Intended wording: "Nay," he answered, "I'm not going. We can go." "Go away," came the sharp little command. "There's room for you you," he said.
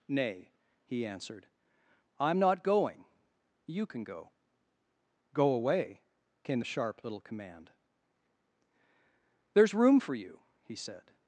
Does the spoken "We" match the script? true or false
false